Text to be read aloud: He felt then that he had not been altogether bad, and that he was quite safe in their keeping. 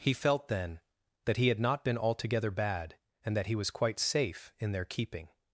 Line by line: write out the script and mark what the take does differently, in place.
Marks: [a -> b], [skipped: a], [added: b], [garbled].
He felt then that he had not been altogether bad, and that he was quite safe in their keeping.